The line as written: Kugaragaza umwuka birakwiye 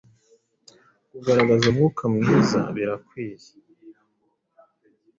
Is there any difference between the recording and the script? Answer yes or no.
yes